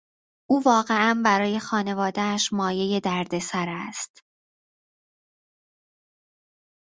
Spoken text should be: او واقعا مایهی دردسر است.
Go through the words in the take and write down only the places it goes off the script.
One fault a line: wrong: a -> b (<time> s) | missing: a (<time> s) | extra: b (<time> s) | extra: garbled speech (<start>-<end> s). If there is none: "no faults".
extra: برای خانوادهاش (1.2 s)